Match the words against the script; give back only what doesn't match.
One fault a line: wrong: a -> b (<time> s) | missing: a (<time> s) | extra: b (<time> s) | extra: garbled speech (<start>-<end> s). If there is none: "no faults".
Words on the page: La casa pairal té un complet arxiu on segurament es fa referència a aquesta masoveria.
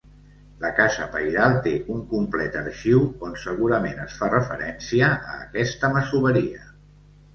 no faults